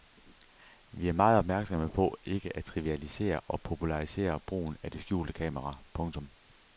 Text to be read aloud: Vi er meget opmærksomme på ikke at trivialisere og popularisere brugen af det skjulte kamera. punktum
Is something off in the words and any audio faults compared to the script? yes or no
no